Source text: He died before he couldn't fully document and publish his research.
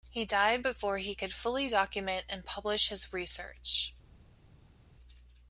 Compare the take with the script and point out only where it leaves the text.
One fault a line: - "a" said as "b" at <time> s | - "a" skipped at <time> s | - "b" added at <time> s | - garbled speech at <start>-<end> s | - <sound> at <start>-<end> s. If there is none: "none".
- "couldn't" said as "could" at 1.1 s